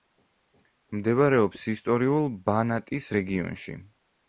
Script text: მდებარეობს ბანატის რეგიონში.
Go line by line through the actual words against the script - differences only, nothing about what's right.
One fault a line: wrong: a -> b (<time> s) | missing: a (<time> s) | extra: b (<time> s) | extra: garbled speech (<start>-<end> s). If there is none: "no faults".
extra: ისტორიულ (1.8 s)